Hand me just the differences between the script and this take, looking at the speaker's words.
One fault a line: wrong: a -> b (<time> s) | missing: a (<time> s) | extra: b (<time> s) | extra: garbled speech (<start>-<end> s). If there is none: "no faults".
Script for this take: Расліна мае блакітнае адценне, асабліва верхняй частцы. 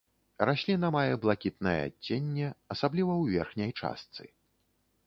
extra: ў (3.2 s)